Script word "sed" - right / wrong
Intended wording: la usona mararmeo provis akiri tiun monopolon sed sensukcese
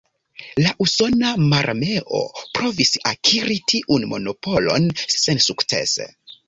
wrong